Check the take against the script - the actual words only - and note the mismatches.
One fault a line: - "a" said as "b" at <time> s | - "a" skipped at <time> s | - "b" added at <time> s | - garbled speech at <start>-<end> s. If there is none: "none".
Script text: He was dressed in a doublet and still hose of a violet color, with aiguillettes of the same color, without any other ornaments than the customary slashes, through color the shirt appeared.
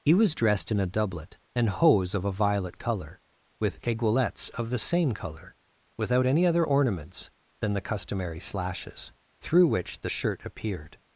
- "still" skipped at 1.7 s
- "color" said as "which" at 9.7 s